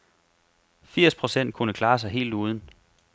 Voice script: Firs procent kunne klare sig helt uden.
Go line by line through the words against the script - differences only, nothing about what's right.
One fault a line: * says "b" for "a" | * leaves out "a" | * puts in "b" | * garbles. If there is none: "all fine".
all fine